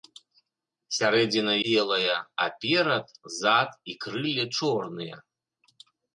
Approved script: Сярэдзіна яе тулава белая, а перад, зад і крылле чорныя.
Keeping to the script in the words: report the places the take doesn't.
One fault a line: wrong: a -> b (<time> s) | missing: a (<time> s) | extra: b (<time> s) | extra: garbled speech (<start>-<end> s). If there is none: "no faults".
missing: яе тулава (1.5 s)